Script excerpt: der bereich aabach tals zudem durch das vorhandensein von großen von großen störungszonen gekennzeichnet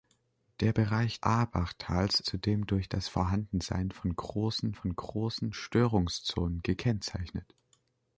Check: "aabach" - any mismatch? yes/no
no